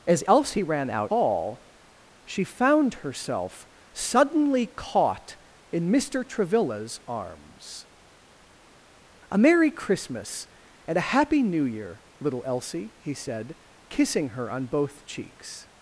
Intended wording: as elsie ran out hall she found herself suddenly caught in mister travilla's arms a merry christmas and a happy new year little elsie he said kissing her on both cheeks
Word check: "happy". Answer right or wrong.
right